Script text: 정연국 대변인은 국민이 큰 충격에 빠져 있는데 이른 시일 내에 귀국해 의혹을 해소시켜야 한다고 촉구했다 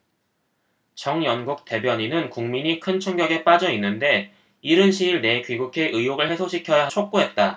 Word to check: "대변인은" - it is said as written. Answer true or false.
true